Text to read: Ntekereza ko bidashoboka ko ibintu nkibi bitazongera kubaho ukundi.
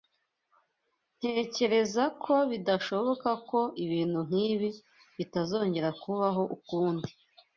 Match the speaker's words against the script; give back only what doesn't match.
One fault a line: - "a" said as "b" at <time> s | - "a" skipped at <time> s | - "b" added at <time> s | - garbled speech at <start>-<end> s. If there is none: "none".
none